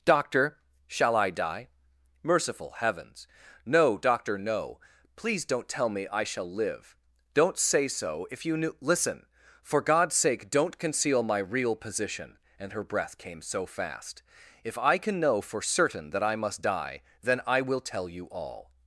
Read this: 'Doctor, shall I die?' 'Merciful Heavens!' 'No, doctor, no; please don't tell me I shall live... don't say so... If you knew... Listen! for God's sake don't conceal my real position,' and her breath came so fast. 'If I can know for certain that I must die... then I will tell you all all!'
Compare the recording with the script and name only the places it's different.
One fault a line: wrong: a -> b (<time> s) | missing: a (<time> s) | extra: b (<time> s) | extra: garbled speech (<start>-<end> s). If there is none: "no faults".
missing: all (18.7 s)